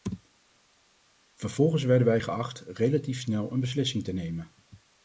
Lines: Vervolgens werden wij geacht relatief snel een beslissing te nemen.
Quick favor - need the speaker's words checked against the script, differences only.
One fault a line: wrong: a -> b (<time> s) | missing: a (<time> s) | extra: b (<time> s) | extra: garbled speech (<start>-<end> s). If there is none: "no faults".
no faults